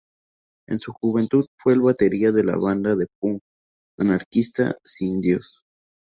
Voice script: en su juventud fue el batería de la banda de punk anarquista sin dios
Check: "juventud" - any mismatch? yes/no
no